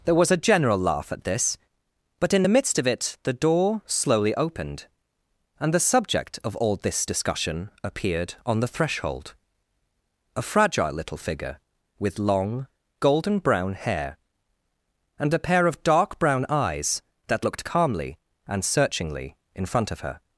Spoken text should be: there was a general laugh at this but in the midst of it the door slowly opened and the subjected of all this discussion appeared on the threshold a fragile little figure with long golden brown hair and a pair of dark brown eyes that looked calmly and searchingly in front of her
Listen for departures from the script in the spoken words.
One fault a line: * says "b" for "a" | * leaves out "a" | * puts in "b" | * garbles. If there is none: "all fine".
* says "subject" for "subjected"